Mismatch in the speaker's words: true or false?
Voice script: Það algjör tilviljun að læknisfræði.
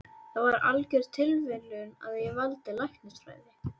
true